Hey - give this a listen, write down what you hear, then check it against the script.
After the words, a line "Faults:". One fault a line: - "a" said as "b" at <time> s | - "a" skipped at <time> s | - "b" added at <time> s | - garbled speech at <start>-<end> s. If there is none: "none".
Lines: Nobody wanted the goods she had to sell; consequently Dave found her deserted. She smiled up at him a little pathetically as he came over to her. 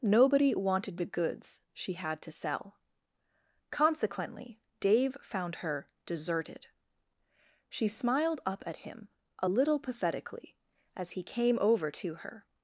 Nobody wanted the goods she had to sell; consequently Dave found her deserted. She smiled up at him a little pathetically as he came over to her.
Faults:
none